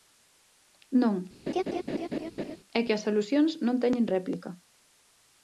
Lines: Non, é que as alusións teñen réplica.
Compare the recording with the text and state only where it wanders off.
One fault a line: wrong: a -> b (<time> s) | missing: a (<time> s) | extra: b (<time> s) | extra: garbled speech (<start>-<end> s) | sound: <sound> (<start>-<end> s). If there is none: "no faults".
sound: laugh (1.5-2.6 s)
extra: non (3.7 s)